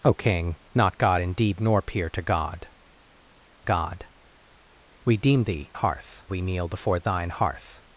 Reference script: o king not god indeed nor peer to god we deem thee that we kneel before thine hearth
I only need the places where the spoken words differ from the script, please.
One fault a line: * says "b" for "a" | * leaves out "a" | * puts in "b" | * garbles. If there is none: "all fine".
* puts in "god"
* says "hearth" for "that"